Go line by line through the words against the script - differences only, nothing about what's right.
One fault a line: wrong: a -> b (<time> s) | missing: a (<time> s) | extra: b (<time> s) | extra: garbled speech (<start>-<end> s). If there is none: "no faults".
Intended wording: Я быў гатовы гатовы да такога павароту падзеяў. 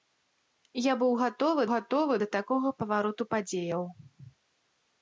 no faults